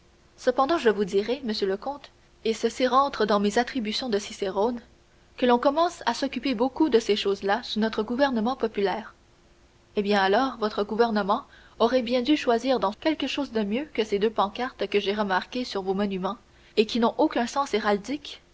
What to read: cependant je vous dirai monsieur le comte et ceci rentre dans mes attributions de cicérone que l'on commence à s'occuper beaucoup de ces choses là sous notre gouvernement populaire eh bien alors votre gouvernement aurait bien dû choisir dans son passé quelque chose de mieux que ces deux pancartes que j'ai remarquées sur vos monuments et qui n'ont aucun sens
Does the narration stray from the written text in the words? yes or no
yes